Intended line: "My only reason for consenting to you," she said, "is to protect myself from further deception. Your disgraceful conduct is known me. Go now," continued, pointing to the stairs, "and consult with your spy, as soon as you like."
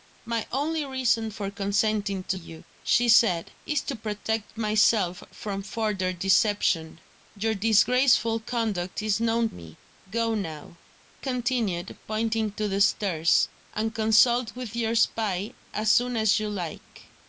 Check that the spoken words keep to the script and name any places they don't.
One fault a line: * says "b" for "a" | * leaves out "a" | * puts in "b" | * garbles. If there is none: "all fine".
all fine